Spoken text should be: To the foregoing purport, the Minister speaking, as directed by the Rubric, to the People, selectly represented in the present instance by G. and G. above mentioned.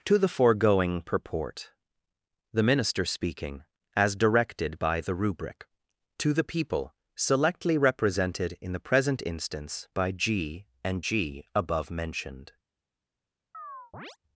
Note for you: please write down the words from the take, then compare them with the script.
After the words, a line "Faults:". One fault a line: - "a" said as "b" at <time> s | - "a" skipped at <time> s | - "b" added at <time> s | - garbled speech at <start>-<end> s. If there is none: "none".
To the foregoing purport, the Minister speaking, as directed by the Rubric, to the People, selectly represented in the present instance by G. and G. above mentioned.
Faults:
none